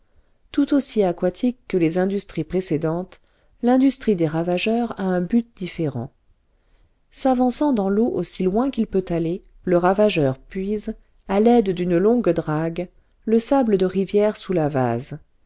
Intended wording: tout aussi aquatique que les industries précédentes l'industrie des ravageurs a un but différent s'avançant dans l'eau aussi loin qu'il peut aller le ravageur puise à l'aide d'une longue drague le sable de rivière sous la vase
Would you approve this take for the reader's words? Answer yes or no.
yes